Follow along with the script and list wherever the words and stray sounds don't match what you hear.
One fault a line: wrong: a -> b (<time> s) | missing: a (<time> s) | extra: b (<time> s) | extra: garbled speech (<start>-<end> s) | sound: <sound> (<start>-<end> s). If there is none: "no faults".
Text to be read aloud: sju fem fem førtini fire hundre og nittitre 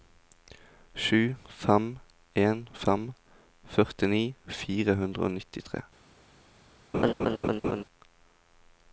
extra: en (2.5 s)
sound: laugh (6.9-7.8 s)